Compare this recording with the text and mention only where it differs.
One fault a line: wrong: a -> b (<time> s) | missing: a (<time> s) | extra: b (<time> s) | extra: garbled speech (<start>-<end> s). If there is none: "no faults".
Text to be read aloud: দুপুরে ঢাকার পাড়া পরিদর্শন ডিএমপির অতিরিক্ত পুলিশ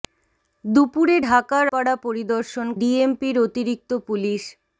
no faults